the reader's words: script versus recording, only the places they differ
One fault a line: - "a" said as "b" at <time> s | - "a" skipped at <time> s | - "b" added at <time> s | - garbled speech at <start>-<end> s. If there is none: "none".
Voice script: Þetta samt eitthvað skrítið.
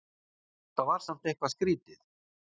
- "var" added at 0.9 s